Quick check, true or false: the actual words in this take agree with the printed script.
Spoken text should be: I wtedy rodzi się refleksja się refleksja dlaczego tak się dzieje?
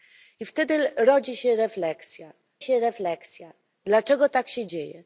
true